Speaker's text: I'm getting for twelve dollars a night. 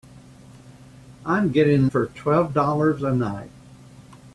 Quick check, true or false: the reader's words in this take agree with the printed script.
true